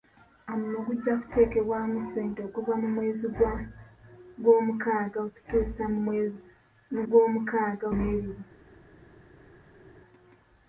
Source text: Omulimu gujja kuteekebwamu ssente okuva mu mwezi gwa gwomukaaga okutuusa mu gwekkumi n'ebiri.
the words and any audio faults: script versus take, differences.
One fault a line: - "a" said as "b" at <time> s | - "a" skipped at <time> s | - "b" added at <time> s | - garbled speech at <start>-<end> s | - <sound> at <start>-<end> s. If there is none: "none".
- "gwekkumi" said as "gwomukaaga" at 7.1 s